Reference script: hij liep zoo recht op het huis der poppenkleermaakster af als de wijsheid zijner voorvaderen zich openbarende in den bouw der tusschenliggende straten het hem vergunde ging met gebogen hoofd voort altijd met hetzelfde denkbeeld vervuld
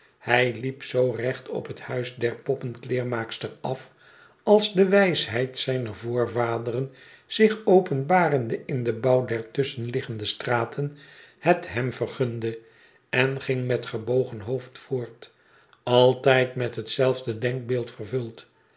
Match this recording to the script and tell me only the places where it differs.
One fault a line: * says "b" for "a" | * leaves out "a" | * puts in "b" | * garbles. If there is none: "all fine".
* puts in "en"